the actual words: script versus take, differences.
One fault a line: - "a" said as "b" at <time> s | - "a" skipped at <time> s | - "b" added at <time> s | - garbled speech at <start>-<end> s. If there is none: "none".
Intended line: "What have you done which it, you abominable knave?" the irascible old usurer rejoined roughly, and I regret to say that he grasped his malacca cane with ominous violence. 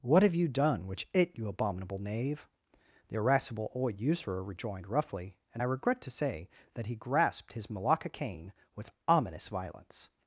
none